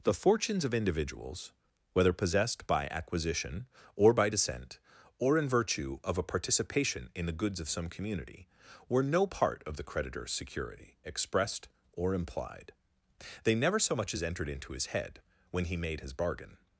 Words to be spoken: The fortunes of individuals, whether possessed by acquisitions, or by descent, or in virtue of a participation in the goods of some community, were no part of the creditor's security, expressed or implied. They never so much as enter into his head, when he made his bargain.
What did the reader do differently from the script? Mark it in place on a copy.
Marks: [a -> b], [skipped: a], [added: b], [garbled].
The fortunes of individuals, whether possessed by [acquisitions, -> acquisition] or by descent, or in virtue of a participation in the goods of some community, were no part of the creditor's security, expressed or implied. They never so much as [enter -> entered] into his head, when he made his bargain.